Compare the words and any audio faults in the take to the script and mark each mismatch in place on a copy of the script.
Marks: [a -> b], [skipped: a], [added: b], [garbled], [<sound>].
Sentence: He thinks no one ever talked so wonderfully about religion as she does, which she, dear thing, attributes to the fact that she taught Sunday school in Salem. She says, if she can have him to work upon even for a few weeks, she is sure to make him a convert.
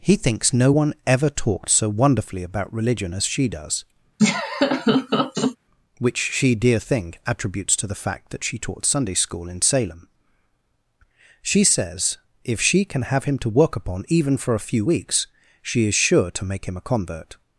He thinks no one ever talked so wonderfully about religion as she does, [laugh] which she, dear thing, attributes to the fact that she taught Sunday school in Salem. She says, if she can have him to work upon even for a few weeks, she is sure to make him a convert.